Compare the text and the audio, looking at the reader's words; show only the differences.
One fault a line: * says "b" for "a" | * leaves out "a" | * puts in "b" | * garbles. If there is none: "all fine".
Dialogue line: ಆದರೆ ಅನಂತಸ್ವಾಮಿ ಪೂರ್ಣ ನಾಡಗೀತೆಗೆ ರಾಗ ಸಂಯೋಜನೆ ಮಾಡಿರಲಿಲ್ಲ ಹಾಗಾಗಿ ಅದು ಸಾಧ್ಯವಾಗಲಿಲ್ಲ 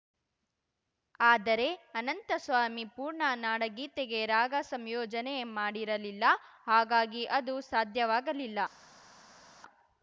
all fine